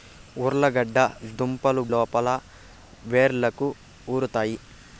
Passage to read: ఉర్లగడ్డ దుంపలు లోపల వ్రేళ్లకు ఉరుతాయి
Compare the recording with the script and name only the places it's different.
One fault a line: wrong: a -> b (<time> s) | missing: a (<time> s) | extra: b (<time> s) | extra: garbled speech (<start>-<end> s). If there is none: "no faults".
no faults